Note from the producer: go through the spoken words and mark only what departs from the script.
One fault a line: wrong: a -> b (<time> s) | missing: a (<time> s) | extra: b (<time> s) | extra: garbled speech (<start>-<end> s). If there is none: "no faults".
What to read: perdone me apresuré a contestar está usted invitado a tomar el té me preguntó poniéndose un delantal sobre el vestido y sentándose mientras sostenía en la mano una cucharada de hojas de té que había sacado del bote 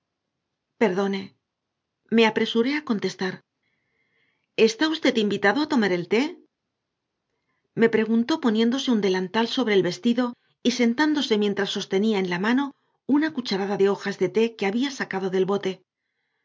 no faults